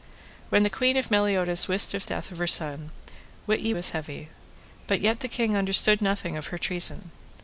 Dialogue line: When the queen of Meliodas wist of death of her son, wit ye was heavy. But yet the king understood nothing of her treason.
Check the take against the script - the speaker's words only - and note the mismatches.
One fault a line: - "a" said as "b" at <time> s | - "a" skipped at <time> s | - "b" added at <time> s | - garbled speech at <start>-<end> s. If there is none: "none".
none